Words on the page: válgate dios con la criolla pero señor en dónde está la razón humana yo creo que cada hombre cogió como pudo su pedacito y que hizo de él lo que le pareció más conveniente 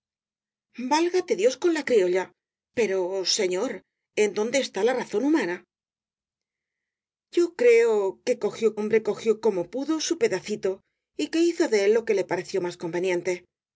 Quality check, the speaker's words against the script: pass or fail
fail